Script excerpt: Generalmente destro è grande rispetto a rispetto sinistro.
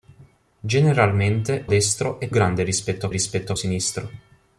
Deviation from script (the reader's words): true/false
false